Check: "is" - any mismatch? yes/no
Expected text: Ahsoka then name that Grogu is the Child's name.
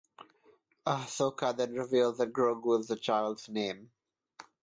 no